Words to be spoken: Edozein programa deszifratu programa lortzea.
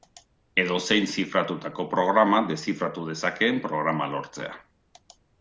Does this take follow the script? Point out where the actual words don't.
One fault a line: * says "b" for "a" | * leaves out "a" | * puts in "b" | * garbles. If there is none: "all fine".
* puts in "zifratutako"
* puts in "dezakeen"